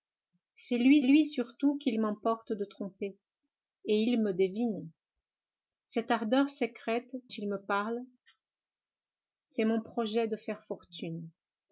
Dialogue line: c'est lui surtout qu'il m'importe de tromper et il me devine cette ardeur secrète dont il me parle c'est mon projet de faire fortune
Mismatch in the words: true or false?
true